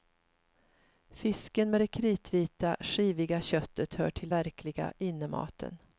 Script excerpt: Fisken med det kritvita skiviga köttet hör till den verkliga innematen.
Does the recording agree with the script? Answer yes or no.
no